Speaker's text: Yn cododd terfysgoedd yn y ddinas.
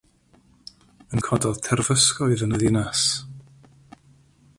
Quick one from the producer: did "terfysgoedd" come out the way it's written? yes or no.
yes